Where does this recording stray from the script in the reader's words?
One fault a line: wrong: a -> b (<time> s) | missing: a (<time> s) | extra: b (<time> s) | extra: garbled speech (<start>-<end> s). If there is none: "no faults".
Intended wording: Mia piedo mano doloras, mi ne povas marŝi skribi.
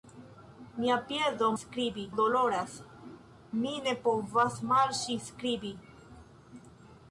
wrong: mano -> skribi (1.6 s)